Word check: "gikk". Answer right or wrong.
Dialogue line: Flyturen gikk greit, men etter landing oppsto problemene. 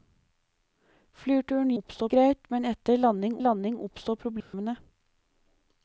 wrong